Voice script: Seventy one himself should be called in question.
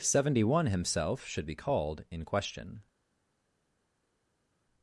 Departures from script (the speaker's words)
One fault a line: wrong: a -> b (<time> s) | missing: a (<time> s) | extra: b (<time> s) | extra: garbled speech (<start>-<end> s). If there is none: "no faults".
no faults